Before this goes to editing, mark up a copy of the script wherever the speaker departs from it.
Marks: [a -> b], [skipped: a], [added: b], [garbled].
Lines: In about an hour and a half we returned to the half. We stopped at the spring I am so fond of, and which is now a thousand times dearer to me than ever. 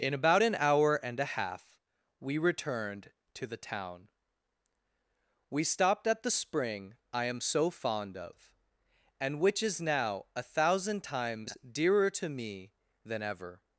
In about an hour and a half we returned to the [half. -> town] We stopped at the spring I am so fond of, and which is now a thousand times dearer to me than ever.